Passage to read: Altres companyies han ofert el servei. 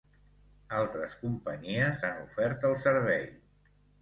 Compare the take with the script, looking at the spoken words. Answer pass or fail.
pass